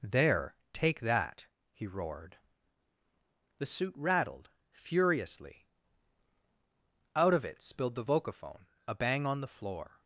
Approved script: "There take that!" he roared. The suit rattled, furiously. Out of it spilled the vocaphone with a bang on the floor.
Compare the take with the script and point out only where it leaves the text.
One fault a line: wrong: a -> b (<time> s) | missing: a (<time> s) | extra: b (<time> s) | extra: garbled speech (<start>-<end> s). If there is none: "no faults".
missing: with (8.6 s)